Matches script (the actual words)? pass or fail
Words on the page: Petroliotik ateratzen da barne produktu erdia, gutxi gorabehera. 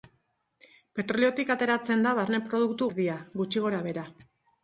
pass